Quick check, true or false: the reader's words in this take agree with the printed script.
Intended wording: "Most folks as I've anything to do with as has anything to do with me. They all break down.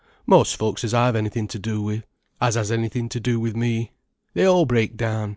true